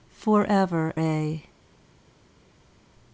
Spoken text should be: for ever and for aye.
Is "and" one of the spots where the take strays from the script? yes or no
yes